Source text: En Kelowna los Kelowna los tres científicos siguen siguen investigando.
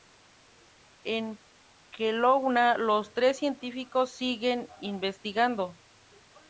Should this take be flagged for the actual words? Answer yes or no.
yes